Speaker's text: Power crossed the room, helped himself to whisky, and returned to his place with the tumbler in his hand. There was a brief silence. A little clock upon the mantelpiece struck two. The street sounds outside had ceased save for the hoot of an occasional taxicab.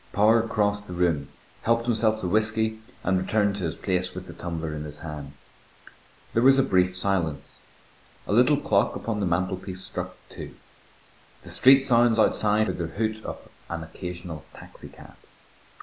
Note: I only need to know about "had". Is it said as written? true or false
false